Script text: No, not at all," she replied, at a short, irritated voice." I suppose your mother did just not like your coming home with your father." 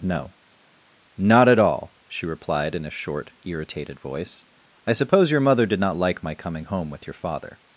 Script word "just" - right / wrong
wrong